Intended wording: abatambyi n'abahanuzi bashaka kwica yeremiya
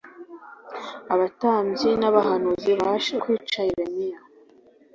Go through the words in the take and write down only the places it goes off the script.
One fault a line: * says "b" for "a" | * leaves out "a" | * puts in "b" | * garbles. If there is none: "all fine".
* leaves out "bashaka"